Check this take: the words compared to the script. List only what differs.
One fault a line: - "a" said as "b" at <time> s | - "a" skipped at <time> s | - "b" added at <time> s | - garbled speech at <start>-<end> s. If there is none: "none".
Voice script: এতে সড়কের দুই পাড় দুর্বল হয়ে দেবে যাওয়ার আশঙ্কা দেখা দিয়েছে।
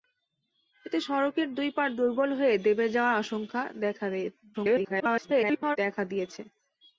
- garbled speech at 4.5-5.8 s